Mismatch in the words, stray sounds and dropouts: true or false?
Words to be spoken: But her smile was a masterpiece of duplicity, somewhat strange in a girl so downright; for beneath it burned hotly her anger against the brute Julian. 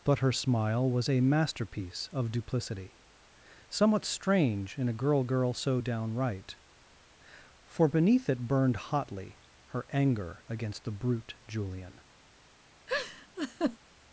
true